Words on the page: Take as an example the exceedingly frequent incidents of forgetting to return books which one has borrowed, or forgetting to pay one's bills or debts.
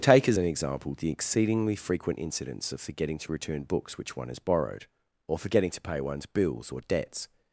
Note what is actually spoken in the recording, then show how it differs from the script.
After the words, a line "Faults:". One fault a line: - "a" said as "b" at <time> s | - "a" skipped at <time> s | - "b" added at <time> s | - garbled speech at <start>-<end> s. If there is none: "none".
Take as an example the exceedingly frequent incidents of forgetting to return books which one has borrowed, or forgetting to pay one's bills or debts.
Faults:
none